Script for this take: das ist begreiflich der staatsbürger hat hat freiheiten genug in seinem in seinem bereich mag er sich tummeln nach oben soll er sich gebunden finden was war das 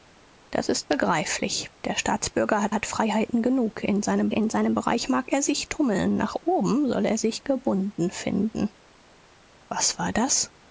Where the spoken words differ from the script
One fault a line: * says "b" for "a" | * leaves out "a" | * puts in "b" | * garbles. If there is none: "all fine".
all fine